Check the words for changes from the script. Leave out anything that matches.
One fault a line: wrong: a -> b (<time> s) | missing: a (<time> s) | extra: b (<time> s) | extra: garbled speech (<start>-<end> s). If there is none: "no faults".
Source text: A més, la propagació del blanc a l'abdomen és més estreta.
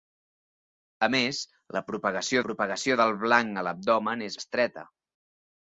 extra: propagació (2.4 s)
missing: més (4.4 s)